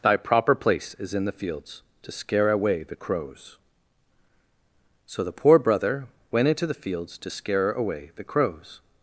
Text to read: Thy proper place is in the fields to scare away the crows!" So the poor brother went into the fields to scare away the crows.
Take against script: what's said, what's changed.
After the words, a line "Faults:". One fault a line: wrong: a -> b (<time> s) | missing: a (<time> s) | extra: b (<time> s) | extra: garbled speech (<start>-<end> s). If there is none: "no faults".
Thy proper place is in the fields to scare away the crows!" So the poor brother went into the fields to scare away the crows.
Faults:
no faults